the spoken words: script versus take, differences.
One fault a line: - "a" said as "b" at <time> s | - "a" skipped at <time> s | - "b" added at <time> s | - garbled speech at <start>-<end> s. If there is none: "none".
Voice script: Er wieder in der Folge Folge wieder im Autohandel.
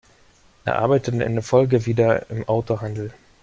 - "wieder" said as "arbeitete" at 0.8 s
- "Folge" skipped at 1.9 s